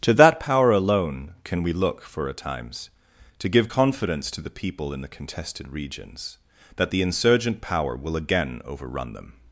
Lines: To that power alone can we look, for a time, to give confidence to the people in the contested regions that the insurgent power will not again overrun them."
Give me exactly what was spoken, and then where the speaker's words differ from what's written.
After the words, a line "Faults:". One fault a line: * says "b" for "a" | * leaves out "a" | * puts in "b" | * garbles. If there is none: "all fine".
To that power alone can we look, for a times, to give confidence to the people in the contested regions that the insurgent power will again overrun them."
Faults:
* says "times" for "time"
* leaves out "not"